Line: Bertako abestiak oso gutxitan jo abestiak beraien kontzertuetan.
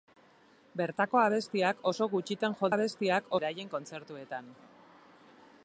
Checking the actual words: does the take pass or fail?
pass